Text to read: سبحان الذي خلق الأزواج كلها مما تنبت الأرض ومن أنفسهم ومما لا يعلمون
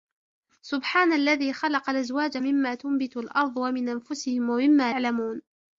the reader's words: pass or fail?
fail